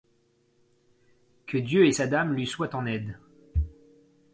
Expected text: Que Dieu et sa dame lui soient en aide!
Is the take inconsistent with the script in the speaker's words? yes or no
no